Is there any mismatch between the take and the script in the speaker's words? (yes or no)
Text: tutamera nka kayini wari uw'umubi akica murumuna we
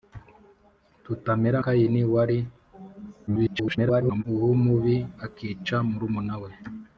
yes